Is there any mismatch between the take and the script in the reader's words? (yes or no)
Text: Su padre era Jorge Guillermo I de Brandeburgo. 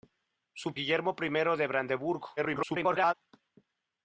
yes